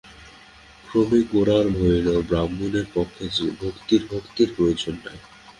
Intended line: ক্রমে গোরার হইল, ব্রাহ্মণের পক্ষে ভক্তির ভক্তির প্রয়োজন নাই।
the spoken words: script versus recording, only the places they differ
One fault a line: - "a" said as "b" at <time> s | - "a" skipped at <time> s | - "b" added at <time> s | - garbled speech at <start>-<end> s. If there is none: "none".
none